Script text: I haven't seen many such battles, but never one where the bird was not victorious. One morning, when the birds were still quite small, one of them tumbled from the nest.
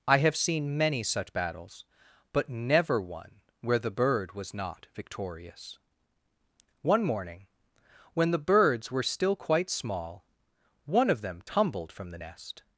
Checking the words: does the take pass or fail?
fail